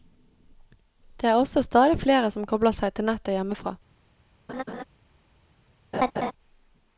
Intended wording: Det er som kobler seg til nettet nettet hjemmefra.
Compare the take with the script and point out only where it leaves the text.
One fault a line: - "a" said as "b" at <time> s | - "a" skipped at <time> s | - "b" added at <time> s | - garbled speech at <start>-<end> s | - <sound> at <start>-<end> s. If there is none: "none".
- "også stadig flere" added at 1.4 s
- "nettet" skipped at 3.3 s
- laugh at 4.5-4.8 s
- laugh at 5.9-6.3 s